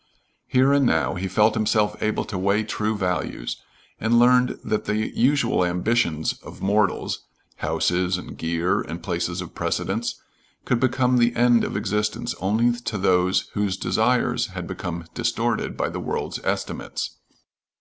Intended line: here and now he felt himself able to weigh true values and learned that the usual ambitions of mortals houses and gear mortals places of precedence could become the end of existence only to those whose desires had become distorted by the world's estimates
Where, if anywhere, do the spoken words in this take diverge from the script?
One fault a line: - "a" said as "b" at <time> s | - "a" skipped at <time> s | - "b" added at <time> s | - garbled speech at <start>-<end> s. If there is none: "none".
- "mortals" said as "and" at 8.8 s